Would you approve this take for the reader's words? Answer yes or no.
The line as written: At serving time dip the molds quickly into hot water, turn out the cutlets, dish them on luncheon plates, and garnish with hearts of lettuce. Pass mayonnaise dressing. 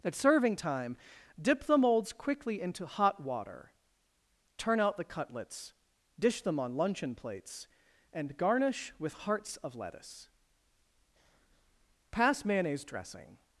yes